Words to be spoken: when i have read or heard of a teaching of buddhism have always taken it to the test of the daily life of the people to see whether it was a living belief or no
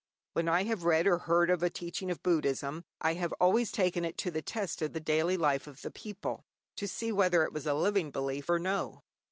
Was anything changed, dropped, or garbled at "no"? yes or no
no